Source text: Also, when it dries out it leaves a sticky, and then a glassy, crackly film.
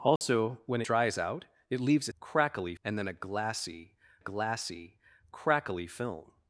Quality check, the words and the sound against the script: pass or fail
fail